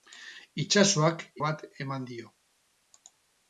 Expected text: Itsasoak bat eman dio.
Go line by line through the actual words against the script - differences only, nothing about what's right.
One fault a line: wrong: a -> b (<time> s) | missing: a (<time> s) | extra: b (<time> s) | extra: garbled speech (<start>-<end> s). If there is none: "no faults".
no faults